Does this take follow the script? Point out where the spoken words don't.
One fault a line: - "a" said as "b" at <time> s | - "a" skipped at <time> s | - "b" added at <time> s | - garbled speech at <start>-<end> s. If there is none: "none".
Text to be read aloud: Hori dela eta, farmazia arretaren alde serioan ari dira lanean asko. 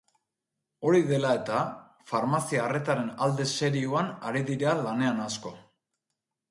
none